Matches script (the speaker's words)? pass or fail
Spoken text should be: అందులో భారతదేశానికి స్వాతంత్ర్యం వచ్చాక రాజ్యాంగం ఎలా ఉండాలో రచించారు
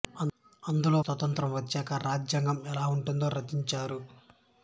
fail